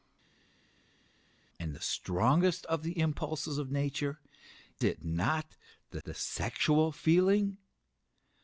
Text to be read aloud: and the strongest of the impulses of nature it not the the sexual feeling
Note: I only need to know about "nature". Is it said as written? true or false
true